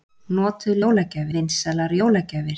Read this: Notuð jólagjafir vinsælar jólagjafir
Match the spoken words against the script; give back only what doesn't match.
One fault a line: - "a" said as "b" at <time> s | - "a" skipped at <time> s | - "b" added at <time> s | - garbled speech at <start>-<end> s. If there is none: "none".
none